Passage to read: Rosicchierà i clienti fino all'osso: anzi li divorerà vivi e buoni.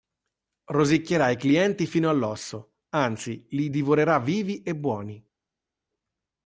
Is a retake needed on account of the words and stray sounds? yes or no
no